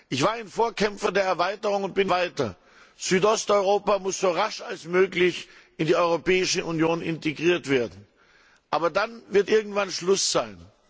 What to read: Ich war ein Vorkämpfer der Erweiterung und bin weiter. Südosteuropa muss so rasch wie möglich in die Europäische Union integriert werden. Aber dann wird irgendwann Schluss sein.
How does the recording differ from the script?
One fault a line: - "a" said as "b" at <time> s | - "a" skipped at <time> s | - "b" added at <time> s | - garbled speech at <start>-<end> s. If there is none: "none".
none